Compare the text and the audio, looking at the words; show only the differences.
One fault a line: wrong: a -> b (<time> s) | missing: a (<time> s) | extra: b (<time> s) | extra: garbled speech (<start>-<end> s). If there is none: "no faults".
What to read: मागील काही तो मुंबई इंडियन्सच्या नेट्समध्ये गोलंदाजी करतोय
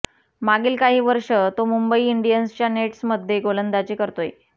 extra: वर्ष (1.0 s)